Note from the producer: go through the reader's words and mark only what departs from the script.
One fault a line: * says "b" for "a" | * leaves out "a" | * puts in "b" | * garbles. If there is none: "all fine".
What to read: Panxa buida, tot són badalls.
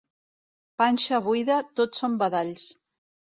all fine